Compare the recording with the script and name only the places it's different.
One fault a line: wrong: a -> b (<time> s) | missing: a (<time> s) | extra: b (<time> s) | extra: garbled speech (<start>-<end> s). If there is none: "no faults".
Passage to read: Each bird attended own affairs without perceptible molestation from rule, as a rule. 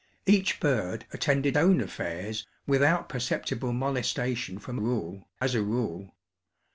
no faults